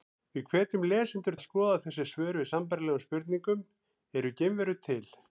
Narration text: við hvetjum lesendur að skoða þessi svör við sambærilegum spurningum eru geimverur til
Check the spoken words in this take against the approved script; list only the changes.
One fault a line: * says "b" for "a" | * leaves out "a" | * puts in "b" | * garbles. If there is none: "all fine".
all fine